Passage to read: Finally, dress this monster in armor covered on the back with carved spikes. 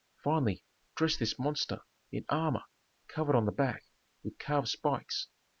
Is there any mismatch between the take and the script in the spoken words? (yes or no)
no